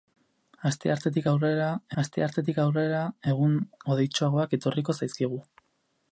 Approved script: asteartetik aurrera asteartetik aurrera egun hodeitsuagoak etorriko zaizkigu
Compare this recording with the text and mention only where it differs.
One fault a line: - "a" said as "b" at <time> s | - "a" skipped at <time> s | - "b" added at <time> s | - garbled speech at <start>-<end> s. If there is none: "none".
none